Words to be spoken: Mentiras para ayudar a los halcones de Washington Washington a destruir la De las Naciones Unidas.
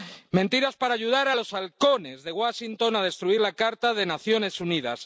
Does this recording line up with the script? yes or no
no